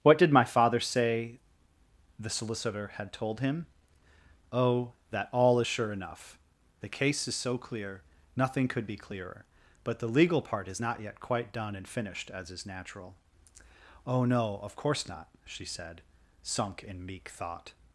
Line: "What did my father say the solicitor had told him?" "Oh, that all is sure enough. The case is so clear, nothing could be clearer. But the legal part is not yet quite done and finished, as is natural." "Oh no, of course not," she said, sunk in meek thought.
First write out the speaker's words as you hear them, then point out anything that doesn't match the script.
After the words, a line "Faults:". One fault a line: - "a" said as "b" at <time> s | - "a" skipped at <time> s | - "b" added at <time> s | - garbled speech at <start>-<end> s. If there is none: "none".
"What did my father say the solicitor had told him?" "Oh, that all is sure enough. The case is so clear, nothing could be clearer. But the legal part is not yet quite done and finished, as is natural." "Oh no, of course not," she said, sunk in meek thought.
Faults:
none